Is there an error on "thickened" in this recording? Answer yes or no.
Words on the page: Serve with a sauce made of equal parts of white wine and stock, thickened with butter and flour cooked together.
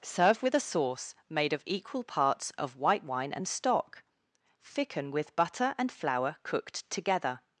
yes